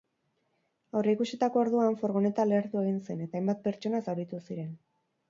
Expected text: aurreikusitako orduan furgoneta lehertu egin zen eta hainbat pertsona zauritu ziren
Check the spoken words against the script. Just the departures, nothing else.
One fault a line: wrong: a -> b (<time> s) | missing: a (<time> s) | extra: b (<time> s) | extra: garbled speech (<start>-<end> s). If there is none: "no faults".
no faults